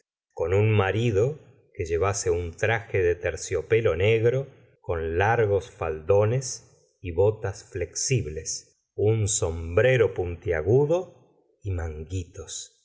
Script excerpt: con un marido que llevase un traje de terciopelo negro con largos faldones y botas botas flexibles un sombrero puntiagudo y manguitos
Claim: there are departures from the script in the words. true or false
true